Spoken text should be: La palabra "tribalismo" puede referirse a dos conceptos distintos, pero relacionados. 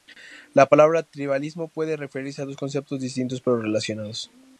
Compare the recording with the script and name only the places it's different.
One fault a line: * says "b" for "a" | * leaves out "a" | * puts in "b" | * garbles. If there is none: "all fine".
all fine